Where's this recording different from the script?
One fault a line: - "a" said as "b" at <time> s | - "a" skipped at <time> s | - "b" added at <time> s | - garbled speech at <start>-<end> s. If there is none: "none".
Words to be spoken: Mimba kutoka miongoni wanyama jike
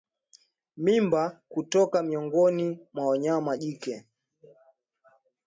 - "mwa" added at 2.9 s